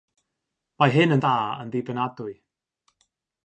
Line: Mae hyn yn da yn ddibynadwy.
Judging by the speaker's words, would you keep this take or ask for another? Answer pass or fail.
pass